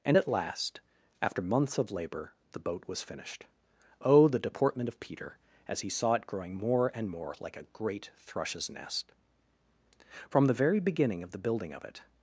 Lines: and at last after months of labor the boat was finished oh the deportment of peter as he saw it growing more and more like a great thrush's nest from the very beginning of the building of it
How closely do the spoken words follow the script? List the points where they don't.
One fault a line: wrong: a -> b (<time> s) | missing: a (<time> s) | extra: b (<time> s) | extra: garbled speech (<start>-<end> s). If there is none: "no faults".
no faults